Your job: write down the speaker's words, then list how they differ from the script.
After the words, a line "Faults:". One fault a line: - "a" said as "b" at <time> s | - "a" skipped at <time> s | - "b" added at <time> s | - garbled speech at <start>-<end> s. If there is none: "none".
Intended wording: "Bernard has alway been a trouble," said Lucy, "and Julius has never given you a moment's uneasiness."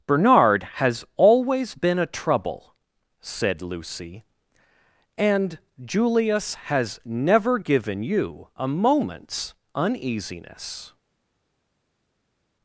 "Bernard has always been a trouble," said Lucy, "and Julius has never given you a moment's uneasiness."
Faults:
- "alway" said as "always" at 1.2 s